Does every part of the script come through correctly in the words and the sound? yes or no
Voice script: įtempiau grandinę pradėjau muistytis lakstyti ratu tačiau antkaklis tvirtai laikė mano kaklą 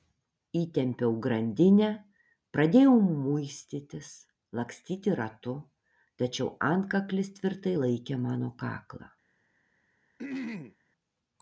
no